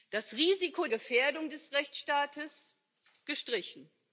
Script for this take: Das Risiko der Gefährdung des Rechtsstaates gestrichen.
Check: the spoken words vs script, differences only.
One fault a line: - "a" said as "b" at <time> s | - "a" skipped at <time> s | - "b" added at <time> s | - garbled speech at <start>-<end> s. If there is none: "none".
- "der" skipped at 0.9 s